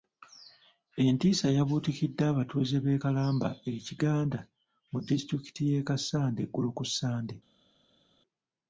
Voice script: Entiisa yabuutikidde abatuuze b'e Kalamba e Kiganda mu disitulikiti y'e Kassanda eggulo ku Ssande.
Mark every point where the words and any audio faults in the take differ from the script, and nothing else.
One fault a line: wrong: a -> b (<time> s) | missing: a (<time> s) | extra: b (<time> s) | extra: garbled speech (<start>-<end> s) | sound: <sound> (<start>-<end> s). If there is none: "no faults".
no faults